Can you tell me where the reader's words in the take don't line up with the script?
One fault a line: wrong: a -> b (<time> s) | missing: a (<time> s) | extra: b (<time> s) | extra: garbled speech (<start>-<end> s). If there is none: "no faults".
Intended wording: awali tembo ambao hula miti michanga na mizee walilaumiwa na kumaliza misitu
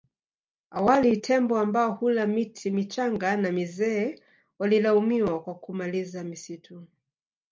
wrong: na -> kwa (5.4 s)